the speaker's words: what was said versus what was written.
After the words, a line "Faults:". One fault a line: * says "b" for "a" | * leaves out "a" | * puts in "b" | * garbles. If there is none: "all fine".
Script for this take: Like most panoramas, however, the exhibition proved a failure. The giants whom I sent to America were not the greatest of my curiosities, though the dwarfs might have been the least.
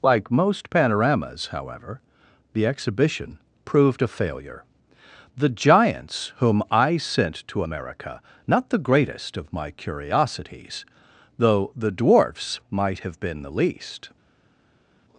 Like most panoramas, however, the exhibition proved a failure. The giants whom I sent to America not the greatest of my curiosities, though the dwarfs might have been the least.
Faults:
* leaves out "were"